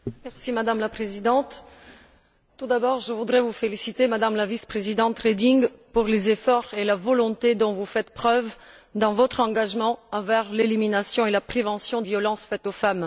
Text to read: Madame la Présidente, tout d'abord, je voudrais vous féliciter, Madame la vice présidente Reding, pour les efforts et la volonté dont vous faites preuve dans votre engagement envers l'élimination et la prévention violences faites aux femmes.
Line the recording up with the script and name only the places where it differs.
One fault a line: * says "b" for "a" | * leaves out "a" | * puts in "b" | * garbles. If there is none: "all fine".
all fine